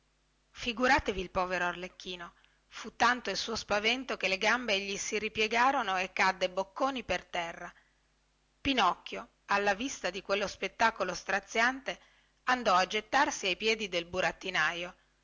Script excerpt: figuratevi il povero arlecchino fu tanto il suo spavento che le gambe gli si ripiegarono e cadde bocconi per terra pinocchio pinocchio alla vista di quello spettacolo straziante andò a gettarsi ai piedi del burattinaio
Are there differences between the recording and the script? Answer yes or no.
yes